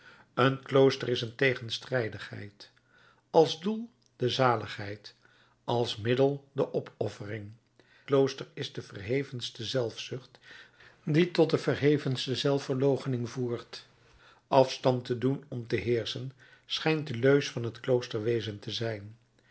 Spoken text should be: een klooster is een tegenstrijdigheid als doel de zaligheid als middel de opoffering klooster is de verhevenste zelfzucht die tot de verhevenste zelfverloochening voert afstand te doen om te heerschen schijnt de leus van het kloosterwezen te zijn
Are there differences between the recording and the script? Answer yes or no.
no